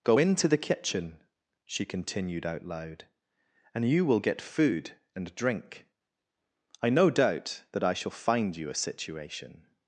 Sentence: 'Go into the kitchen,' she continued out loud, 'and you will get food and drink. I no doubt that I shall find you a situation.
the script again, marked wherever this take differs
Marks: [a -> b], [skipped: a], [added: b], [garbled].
'Go into the kitchen,' she continued out loud, 'and you will get food and drink. I no doubt that I shall find you a situation.